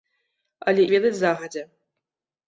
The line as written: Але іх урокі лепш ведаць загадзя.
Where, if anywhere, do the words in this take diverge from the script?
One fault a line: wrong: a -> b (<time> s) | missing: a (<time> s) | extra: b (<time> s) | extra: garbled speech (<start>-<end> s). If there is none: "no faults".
missing: іх урокі лепш (0.8 s)